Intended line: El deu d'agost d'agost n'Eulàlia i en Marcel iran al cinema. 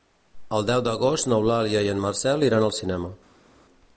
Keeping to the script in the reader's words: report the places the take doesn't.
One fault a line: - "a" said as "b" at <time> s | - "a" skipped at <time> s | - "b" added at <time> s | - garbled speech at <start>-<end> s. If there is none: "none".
- "d'agost" skipped at 1.3 s